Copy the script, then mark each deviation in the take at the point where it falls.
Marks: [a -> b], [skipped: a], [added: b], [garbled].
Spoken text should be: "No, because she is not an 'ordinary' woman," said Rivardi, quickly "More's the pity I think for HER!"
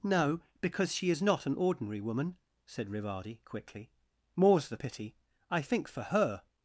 "No, because she is not an 'ordinary' woman," said Rivardi, quickly "More's the pity I think for HER!"